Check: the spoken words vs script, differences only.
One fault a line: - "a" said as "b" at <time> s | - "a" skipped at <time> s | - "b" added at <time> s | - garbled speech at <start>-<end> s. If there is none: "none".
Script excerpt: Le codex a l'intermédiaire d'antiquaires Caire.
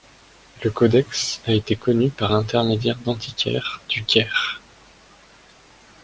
- "été connu par" added at 1.5 s
- "du" added at 3.9 s